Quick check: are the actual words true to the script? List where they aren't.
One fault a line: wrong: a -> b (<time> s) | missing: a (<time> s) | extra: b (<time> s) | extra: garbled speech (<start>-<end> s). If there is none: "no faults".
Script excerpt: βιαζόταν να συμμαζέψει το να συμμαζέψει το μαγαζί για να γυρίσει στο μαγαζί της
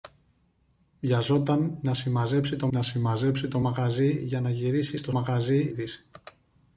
no faults